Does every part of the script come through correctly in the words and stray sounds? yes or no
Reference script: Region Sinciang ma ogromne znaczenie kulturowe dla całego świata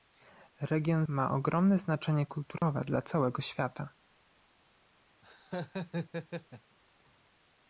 no